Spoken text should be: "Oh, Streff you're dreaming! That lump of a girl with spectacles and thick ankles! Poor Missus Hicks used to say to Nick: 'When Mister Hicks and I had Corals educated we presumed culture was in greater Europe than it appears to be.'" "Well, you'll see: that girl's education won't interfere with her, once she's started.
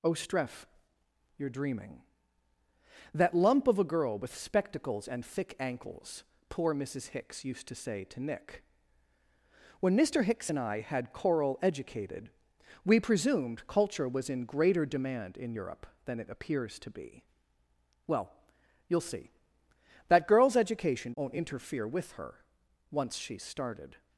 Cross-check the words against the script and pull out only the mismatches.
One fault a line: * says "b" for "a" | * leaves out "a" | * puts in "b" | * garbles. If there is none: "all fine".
* says "Coral" for "Corals"
* puts in "demand in"